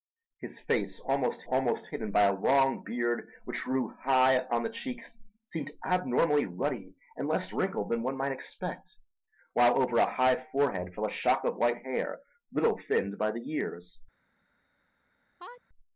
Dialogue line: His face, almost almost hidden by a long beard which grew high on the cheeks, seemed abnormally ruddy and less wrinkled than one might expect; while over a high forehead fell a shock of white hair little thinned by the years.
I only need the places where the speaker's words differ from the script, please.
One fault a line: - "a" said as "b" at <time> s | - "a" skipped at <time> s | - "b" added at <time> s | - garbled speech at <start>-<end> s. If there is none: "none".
none